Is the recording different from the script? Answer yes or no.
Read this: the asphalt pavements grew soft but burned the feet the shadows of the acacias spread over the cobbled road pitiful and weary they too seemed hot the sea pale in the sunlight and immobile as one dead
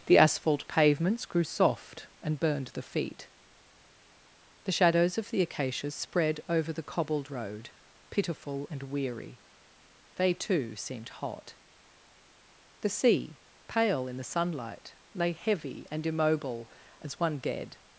yes